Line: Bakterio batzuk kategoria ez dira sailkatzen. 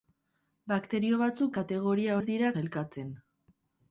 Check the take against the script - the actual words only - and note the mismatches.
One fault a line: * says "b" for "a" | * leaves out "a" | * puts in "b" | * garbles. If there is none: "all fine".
all fine